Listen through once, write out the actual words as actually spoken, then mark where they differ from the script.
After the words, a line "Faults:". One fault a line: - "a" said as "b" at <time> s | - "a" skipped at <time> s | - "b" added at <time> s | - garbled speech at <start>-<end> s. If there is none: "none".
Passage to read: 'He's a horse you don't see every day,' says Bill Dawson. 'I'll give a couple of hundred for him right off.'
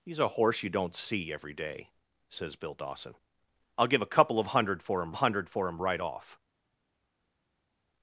'He's a horse you don't see every day,' says Bill Dawson. 'I'll give a couple of hundred for him hundred for him right off.'
Faults:
- "hundred for him" added at 5.2 s